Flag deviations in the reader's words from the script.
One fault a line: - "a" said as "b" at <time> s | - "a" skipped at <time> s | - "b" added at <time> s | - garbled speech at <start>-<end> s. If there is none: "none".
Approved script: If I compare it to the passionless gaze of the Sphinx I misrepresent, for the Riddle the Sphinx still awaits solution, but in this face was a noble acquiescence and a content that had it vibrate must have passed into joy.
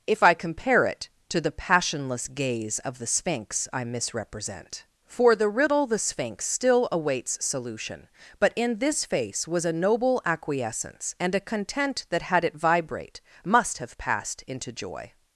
none